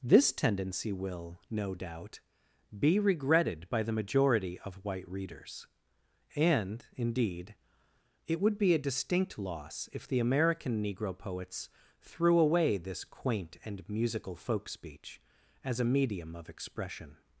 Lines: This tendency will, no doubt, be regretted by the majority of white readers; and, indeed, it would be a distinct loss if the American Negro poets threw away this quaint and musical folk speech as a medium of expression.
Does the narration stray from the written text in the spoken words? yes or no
no